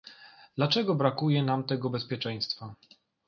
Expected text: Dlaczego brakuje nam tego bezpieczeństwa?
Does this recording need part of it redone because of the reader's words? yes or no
no